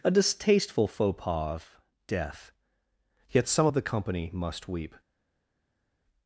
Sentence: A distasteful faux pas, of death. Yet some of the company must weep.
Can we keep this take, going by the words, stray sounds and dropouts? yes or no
yes